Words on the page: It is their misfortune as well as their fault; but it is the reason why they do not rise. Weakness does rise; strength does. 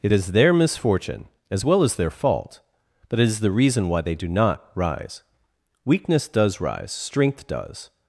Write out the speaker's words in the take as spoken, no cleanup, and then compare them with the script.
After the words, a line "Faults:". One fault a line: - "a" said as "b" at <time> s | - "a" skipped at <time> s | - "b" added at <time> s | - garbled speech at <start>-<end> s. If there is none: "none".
It is their misfortune as well as their fault; but it is the reason why they do not rise. Weakness does rise; strength does.
Faults:
none